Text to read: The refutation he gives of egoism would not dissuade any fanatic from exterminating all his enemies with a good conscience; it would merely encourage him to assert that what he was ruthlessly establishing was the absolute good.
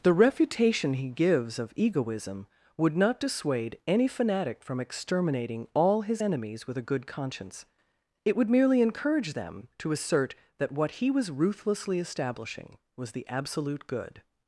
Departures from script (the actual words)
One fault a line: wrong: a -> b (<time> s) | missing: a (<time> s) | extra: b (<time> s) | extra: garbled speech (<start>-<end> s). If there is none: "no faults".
wrong: him -> them (9.3 s)